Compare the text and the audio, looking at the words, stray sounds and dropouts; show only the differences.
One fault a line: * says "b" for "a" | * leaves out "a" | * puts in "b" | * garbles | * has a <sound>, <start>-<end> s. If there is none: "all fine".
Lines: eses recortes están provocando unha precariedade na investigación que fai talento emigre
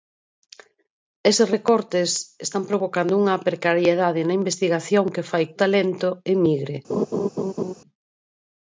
* has a laugh, 6.9-7.7 s